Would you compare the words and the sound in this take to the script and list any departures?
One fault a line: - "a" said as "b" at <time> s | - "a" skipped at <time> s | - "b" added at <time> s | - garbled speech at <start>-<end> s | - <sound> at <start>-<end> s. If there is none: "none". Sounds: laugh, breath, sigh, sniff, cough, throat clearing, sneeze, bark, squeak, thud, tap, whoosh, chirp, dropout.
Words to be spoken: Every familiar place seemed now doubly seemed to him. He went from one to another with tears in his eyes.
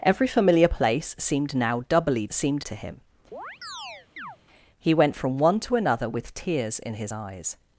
- chirp at 3.3-4.4 s